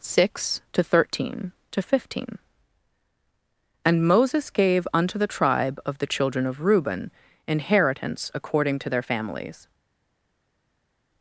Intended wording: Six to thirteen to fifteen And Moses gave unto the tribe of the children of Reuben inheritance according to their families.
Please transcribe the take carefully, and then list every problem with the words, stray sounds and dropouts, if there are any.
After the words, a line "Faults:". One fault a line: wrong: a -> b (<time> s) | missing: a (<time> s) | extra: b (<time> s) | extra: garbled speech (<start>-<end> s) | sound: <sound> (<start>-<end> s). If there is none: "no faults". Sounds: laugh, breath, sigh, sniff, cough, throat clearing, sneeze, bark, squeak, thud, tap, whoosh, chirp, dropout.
Six to thirteen to fifteen And Moses gave unto the tribe of the children of Reuben inheritance according to their families.
Faults:
no faults